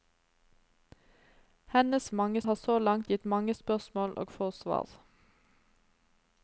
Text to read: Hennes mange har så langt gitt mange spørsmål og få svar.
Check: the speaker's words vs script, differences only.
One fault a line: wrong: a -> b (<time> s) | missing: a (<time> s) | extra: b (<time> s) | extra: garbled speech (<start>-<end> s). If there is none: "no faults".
no faults